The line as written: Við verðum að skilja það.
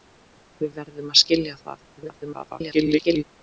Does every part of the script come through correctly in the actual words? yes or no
no